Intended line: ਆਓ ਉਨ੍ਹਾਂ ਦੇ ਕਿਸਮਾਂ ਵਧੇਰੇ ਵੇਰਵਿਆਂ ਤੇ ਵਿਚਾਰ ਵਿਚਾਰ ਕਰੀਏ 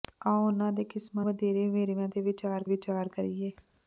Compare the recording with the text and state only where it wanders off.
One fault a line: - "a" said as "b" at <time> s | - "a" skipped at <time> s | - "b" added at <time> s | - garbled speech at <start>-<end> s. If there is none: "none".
none